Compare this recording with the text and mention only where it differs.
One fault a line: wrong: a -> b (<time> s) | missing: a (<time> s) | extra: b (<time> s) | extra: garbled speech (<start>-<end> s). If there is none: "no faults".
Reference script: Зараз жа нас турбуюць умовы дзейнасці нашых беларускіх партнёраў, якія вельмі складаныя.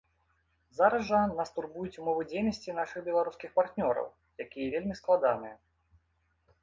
no faults